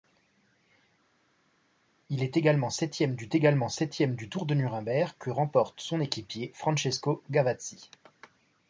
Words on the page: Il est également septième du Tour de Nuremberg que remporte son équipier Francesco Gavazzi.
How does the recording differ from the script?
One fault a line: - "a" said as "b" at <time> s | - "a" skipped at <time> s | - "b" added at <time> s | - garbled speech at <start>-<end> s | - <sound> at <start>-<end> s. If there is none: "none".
- "également septième du" added at 3.3 s